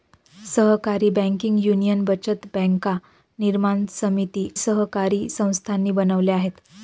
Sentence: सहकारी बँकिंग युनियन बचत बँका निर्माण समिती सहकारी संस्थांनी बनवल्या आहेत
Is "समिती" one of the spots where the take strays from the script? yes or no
no